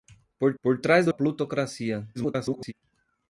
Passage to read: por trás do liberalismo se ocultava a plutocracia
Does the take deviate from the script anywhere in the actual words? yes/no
yes